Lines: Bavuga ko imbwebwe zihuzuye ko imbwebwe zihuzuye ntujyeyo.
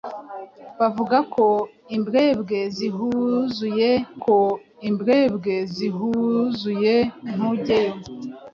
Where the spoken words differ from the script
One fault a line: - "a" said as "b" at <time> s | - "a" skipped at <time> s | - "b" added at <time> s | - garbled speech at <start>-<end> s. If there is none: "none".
none